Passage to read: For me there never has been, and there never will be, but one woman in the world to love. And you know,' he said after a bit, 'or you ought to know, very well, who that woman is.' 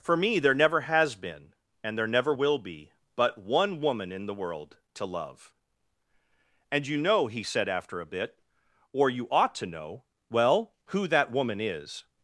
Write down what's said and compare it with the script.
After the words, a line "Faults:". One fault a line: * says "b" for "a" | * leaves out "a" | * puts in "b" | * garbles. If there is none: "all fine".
For me there never has been, and there never will be, but one woman in the world to love. And you know,' he said after a bit, 'or you ought to know, well, who that woman is.'
Faults:
* leaves out "very"